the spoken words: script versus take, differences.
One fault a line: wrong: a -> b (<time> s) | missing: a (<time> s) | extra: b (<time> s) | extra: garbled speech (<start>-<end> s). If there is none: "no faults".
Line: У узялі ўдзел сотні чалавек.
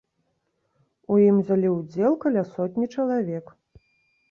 extra: ім (1.2 s)
extra: каля (2.2 s)